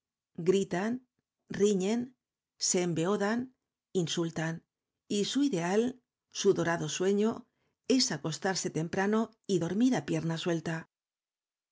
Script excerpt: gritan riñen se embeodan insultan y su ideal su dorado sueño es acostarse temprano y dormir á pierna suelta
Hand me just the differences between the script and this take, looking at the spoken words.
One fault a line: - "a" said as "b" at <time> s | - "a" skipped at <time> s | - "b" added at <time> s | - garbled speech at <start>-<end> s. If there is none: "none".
none